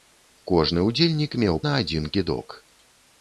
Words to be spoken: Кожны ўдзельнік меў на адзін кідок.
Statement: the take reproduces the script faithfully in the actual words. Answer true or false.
true